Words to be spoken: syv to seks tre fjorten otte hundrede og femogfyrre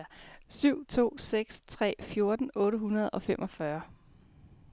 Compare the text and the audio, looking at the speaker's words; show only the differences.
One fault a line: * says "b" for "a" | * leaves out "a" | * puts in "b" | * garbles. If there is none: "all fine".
all fine